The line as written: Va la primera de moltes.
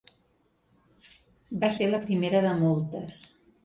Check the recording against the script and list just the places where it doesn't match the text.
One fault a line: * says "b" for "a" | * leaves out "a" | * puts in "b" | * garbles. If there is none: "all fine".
* puts in "ser"